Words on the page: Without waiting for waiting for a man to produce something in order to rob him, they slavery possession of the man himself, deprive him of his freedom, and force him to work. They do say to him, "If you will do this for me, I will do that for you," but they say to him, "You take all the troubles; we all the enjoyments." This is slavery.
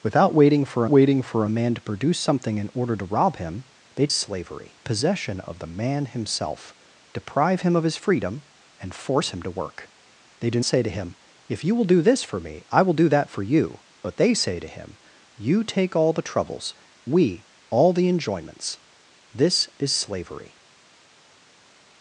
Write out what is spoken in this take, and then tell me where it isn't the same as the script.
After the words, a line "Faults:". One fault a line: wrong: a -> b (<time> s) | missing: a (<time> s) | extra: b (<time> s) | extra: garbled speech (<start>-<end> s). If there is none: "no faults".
Without waiting for waiting for a man to produce something in order to rob him, they slavery possession of the man himself, deprive him of his freedom, and force him to work. They do say to him, "If you will do this for me, I will do that for you," but they say to him, "You take all the troubles; we all the enjoyments." This is slavery.
Faults:
no faults